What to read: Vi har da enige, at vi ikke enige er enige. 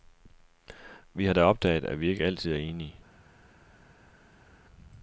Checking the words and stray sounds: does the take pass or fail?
fail